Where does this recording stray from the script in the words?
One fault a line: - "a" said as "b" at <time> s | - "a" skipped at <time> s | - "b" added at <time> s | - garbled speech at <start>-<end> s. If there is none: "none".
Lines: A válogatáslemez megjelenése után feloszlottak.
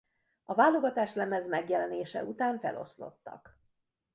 none